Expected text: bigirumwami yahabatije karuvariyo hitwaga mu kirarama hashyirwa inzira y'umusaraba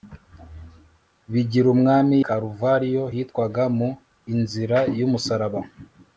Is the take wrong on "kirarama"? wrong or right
wrong